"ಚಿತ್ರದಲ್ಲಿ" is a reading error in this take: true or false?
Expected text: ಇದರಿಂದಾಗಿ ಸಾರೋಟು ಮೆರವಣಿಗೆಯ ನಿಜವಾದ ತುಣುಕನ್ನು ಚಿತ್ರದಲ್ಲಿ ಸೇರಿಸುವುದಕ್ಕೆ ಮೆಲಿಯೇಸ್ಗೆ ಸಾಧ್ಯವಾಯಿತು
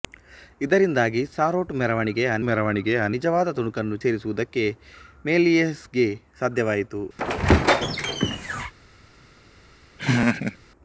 true